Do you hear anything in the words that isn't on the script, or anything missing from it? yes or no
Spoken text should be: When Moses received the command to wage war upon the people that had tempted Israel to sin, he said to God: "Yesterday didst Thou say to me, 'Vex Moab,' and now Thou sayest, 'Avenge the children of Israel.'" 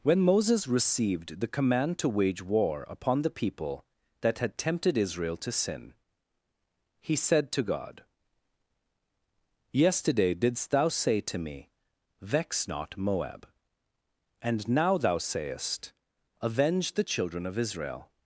yes